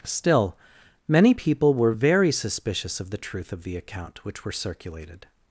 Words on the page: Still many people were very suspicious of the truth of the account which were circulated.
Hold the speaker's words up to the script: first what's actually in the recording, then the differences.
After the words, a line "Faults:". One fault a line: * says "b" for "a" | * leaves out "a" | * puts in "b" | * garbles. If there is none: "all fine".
Still many people were very suspicious of the truth of the account which were circulated.
Faults:
all fine